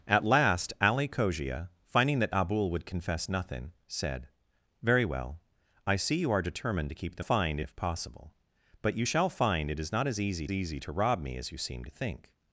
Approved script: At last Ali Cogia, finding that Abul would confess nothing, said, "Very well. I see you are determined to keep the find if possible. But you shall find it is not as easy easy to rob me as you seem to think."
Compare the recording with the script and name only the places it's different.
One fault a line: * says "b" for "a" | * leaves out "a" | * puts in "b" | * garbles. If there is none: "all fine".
all fine